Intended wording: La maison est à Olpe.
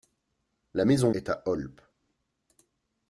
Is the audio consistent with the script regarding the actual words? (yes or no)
yes